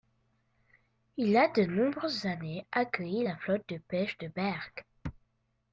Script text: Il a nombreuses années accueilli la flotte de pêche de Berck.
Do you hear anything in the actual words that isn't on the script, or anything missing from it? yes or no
yes